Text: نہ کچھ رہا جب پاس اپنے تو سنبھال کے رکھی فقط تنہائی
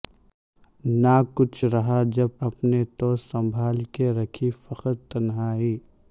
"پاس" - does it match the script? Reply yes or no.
no